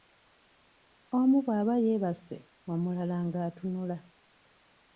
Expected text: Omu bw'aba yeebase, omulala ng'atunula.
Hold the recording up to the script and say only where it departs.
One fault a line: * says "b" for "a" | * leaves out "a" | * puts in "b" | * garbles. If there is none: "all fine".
all fine